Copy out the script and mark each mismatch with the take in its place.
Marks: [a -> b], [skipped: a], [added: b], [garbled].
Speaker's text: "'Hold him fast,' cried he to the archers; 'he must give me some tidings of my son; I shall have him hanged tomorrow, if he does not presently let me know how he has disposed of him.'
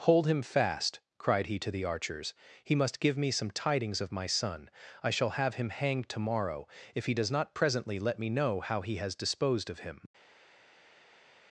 "'Hold him fast,' cried he to the archers; 'he must give me some tidings of my son; I shall have him hanged tomorrow, if he does not presently let me know how he has disposed of him.'